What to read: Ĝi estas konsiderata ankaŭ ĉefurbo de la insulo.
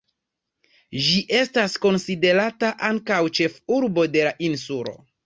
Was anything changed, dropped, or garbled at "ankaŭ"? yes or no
no